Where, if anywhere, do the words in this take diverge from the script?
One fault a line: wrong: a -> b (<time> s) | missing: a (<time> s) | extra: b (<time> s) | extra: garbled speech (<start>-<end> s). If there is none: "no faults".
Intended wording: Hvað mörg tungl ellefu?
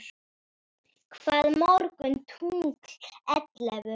no faults